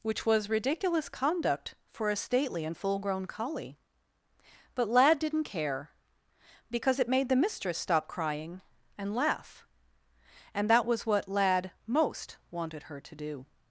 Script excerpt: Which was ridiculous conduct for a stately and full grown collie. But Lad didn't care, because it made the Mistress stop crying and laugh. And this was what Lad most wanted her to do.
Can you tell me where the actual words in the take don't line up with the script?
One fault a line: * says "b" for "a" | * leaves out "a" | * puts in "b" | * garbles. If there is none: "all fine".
* says "that" for "this"